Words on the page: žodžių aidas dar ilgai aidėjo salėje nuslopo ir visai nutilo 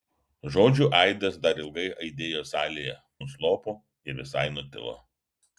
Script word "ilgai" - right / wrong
right